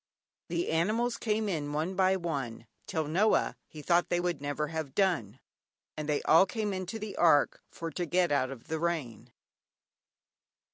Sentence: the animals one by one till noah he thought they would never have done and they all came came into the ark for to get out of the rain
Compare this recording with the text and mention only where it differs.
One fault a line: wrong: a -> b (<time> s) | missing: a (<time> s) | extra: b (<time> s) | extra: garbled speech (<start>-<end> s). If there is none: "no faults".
extra: came in (1.2 s)
missing: came (6.7 s)